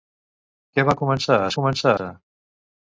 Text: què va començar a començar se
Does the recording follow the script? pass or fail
pass